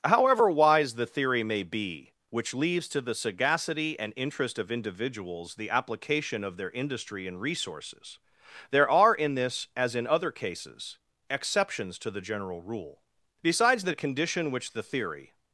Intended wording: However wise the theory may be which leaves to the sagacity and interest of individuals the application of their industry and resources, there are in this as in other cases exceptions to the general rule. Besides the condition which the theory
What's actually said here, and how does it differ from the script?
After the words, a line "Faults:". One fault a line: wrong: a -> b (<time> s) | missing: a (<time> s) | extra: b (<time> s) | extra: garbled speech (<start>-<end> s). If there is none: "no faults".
However wise the theory may be which leaves to the sagacity and interest of individuals the application of their industry and resources, there are in this as in other cases exceptions to the general rule. Besides the condition which the theory
Faults:
no faults